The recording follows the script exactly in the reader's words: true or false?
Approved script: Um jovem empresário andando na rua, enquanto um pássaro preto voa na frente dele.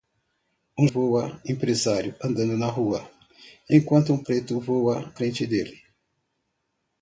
false